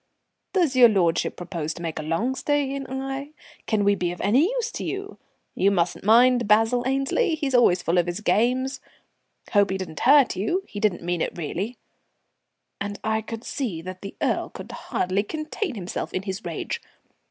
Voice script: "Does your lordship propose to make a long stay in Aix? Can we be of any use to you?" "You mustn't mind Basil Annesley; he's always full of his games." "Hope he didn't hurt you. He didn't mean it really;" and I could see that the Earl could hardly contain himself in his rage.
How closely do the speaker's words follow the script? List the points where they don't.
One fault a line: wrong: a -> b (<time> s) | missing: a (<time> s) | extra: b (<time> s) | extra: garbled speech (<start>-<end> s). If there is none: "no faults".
no faults